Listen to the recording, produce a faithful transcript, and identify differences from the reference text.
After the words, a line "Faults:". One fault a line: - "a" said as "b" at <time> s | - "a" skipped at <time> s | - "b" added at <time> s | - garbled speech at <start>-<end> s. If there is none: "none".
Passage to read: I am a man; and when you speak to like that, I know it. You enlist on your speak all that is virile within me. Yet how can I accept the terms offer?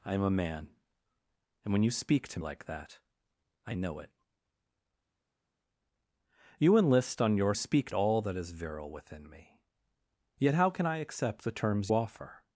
I am a man; and when you speak to like that, I know it. You enlist on your speak all that is virile within me. Yet how can I accept the terms offer?
Faults:
none